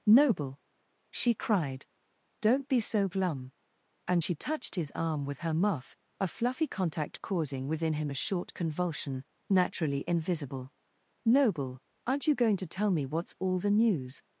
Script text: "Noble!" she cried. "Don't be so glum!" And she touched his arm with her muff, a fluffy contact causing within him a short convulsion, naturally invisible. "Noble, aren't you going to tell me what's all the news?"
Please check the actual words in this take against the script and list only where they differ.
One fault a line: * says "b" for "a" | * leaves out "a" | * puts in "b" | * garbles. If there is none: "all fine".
all fine